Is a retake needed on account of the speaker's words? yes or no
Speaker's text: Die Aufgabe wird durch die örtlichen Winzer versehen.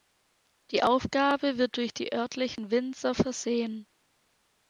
no